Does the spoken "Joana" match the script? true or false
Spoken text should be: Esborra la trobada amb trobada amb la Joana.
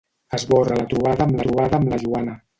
true